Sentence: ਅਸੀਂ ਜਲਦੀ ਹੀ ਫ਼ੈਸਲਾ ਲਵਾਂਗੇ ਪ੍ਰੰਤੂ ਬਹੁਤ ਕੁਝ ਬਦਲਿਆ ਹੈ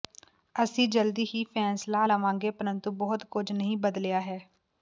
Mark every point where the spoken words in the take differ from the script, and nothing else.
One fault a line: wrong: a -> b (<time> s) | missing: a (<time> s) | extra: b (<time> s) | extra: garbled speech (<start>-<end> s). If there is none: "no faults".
extra: ਨਹੀਂ (3.5 s)